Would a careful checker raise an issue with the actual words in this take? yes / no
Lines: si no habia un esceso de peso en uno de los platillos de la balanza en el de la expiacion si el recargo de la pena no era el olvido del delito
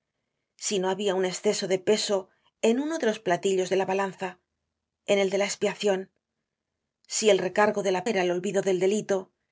yes